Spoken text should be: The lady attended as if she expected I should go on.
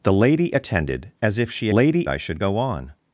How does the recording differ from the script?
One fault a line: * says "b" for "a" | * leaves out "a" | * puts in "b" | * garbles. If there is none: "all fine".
* says "lady" for "expected"